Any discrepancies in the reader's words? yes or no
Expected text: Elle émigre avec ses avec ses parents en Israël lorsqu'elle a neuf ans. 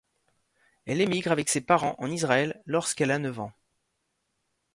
yes